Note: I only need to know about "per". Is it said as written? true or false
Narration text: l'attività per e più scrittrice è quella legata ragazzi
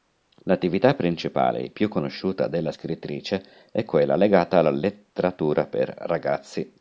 false